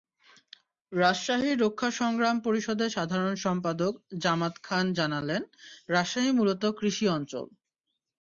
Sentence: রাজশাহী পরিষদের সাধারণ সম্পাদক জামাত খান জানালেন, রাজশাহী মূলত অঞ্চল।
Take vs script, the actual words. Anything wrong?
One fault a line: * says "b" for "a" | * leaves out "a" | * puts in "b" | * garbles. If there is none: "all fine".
* puts in "রক্ষা সংগ্রাম"
* puts in "কৃষি"